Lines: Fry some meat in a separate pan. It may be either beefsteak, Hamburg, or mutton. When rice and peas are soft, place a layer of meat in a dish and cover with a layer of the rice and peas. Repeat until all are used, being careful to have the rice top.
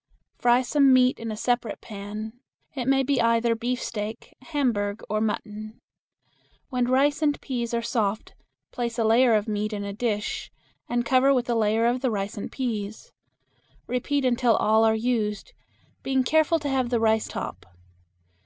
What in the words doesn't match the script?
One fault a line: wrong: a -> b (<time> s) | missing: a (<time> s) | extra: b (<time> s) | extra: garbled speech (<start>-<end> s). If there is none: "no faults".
no faults